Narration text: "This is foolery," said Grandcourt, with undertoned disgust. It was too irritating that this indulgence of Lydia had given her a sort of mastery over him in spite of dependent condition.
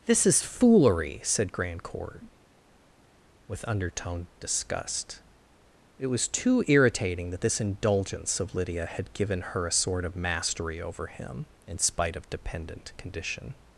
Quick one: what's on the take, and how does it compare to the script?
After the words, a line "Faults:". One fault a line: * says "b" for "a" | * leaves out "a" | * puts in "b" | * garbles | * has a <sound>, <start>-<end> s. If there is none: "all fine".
"This is foolery," said Grandcourt, with undertoned disgust. It was too irritating that this indulgence of Lydia had given her a sort of mastery over him in spite of dependent condition.
Faults:
all fine